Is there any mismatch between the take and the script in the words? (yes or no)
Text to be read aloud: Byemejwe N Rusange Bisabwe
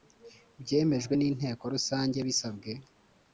yes